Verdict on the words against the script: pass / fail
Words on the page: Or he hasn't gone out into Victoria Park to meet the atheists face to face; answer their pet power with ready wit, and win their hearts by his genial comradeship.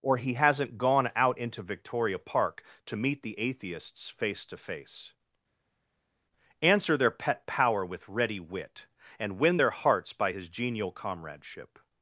pass